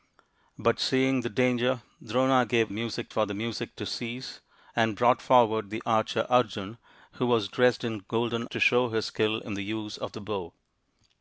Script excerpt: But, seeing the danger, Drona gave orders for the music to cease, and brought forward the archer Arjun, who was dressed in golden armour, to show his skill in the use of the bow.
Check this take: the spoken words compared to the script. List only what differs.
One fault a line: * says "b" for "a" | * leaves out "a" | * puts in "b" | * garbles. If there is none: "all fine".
* says "music" for "orders"
* leaves out "armour"